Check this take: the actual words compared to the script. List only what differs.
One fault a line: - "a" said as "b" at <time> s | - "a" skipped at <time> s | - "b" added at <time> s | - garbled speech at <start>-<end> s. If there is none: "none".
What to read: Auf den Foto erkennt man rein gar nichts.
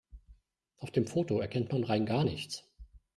- "den" said as "dem" at 0.9 s